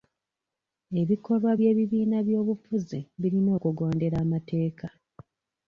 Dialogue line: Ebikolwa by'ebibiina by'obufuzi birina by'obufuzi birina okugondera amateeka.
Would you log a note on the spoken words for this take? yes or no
yes